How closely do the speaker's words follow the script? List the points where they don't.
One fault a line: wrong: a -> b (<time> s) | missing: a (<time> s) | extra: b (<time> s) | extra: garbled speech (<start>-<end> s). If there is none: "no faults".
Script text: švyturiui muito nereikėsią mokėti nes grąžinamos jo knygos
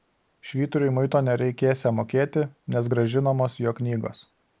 no faults